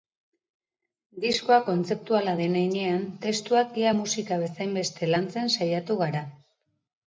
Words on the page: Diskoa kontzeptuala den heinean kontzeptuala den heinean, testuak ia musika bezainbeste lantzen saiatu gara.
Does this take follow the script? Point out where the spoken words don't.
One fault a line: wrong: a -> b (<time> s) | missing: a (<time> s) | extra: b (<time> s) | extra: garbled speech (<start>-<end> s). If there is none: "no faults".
missing: kontzeptuala den heinean (3.0 s)